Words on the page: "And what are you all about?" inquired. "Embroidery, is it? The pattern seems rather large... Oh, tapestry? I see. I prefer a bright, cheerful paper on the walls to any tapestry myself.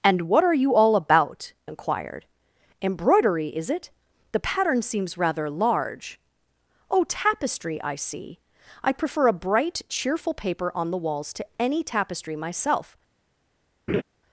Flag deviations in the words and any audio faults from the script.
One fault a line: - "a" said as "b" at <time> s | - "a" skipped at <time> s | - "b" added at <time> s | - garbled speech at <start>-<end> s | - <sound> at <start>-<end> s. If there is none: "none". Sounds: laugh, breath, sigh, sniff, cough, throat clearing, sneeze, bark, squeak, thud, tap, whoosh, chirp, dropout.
- laugh at 13.9-14.0 s